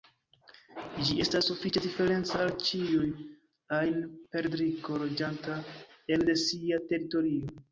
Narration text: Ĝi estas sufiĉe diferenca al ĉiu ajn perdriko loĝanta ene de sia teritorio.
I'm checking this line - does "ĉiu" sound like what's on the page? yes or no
yes